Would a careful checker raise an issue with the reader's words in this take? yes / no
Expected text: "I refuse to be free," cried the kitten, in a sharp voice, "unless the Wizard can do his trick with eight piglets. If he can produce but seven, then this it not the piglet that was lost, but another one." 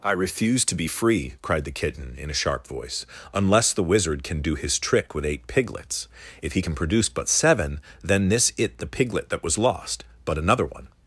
yes